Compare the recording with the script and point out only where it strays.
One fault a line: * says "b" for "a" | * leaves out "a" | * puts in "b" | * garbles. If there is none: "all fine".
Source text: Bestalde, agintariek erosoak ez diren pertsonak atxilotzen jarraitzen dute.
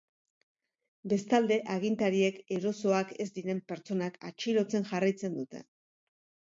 all fine